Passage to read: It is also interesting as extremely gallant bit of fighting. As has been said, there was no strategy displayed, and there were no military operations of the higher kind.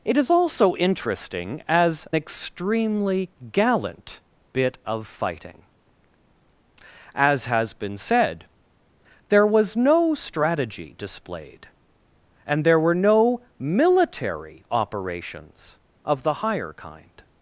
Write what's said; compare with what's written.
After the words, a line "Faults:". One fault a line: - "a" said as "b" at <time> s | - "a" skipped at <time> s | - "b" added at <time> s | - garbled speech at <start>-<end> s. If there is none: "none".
It is also interesting as extremely gallant bit of fighting. As has been said, there was no strategy displayed, and there were no military operations of the higher kind.
Faults:
none